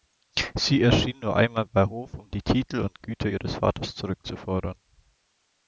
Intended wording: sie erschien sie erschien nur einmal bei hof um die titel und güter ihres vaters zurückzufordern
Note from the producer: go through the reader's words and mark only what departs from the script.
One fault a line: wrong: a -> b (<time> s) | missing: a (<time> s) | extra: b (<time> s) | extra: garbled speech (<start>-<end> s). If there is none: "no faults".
missing: sie erschien (1.2 s)